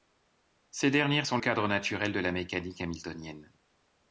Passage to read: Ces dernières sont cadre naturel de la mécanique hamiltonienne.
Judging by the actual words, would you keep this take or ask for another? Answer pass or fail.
pass